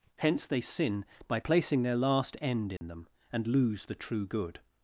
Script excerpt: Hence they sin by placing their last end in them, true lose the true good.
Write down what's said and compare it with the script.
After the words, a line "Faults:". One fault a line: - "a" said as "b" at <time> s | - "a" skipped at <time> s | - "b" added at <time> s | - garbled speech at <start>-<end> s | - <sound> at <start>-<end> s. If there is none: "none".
Hence they sin by placing their last end in them, and lose the true good.
Faults:
- dropout at 2.8-2.8 s
- "true" said as "and" at 3.3 s